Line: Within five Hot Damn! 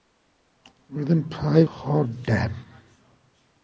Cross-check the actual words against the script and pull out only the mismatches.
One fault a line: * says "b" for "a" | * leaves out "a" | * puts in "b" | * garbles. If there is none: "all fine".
all fine